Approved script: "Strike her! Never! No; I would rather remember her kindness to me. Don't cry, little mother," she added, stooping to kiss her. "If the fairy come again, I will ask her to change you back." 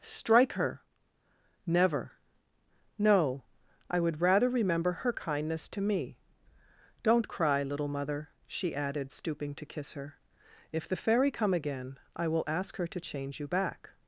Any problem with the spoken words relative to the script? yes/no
no